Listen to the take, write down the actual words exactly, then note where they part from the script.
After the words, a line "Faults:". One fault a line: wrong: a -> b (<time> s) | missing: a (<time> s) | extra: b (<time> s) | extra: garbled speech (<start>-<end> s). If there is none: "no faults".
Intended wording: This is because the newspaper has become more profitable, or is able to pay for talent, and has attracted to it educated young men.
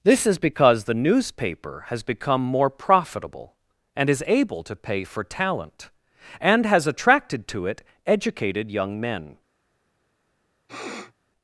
This is because the newspaper has become more profitable, and is able to pay for talent, and has attracted to it educated young men.
Faults:
wrong: or -> and (3.9 s)